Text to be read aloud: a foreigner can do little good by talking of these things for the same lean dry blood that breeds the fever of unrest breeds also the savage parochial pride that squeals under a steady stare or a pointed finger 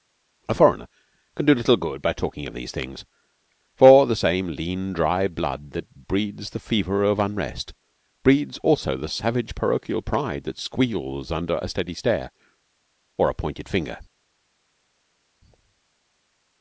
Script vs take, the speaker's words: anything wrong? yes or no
no